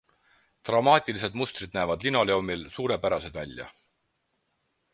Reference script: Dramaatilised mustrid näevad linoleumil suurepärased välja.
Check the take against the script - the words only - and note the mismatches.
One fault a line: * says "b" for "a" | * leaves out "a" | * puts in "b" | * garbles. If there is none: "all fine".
all fine